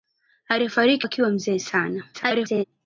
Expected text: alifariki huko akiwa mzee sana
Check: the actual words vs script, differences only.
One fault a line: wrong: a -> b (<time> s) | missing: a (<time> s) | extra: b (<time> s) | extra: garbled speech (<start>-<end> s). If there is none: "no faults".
missing: huko (1.1 s)
extra: garbled speech (2.1-2.6 s)